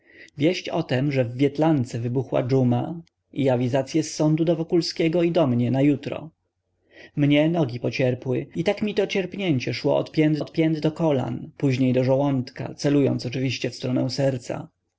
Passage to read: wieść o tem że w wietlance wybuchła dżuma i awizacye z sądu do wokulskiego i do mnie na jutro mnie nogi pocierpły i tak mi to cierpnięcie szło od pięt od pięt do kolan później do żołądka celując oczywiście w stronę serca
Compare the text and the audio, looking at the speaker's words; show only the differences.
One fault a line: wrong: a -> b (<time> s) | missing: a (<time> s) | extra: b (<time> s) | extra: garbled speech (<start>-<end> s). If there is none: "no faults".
no faults